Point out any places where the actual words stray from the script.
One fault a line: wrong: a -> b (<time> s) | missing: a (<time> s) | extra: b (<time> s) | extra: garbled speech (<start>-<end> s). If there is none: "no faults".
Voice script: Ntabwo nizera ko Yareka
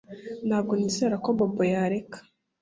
extra: Bobo (1.4 s)